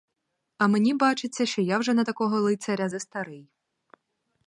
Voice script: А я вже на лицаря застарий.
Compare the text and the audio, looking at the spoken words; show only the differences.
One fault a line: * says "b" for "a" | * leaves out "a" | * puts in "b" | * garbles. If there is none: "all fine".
* puts in "мені бачиться що"
* puts in "такого"